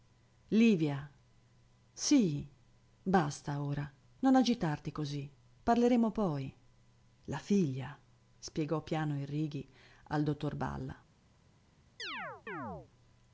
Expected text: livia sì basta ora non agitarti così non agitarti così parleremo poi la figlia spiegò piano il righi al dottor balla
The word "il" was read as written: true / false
true